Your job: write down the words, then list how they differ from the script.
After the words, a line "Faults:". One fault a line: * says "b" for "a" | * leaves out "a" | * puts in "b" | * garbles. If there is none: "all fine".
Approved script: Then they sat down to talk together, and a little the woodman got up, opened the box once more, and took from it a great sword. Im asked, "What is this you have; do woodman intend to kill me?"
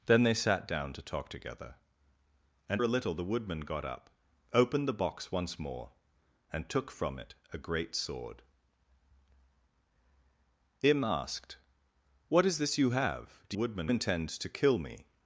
Then they sat down to talk together, and a little the woodman got up, opened the box once more, and took from it a great sword. Im asked, "What is this you have; do woodman intend to kill me?"
Faults:
all fine